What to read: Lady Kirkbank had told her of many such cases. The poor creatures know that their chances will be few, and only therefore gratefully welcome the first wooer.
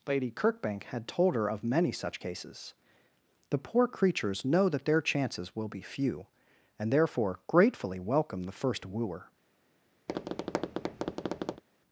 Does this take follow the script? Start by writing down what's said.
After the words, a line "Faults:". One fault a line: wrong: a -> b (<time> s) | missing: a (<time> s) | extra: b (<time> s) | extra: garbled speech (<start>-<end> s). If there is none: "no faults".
Lady Kirkbank had told her of many such cases. The poor creatures know that their chances will be few, and therefore gratefully welcome the first wooer.
Faults:
missing: only (6.9 s)